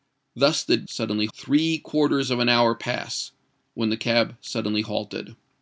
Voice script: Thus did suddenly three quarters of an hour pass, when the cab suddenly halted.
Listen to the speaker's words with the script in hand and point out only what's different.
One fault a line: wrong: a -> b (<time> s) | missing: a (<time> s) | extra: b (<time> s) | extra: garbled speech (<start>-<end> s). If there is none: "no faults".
no faults